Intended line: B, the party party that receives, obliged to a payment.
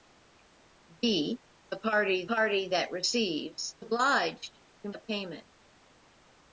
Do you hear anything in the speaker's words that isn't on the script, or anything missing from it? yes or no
no